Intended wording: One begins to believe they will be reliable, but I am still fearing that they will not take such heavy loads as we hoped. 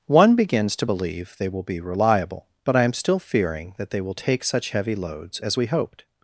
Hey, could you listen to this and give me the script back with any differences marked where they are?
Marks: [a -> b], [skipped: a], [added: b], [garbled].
One begins to believe they will be reliable, but I am still fearing that they will [skipped: not] take such heavy loads as we hoped.